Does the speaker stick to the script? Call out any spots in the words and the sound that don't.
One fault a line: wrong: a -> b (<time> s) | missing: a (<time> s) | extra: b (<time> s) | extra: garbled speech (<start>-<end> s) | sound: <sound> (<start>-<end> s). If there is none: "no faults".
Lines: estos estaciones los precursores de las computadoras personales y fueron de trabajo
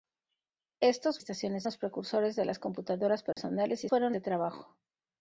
sound: dropout (3.3-3.4 s)